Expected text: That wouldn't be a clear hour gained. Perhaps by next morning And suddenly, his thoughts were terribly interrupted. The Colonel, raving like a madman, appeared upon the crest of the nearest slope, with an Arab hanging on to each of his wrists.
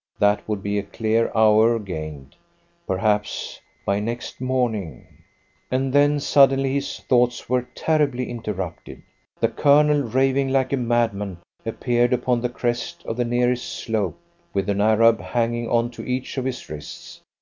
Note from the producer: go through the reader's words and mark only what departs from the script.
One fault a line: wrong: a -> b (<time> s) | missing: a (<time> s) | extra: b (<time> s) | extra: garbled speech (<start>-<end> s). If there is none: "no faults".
wrong: wouldn't -> would (0.5 s)
extra: then (5.9 s)